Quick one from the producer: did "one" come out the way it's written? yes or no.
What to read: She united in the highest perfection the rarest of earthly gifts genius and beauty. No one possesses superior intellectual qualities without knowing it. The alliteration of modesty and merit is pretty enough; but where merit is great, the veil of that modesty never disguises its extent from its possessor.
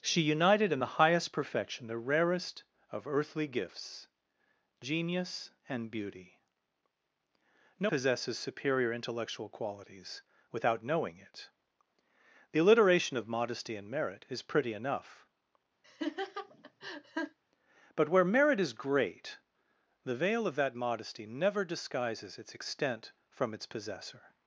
no